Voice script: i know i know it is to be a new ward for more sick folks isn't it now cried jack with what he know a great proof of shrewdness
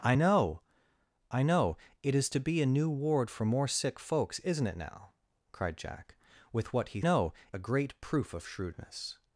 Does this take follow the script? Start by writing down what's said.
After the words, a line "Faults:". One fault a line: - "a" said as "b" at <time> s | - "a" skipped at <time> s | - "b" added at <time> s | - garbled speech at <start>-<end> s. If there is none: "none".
i know i know it is to be a new ward for more sick folks isn't it now cried jack with what he know a great proof of shrewdness
Faults:
none